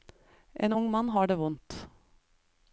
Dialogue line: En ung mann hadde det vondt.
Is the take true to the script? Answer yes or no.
no